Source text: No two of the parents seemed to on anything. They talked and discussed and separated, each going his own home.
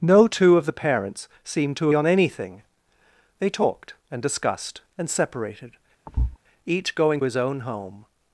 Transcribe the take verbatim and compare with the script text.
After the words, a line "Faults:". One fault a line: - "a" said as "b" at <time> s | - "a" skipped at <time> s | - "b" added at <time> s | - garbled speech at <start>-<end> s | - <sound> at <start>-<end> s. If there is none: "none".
No two of the parents seemed to on anything. They talked and discussed and separated, each going his own home.
Faults:
- thud at 6.1-6.4 s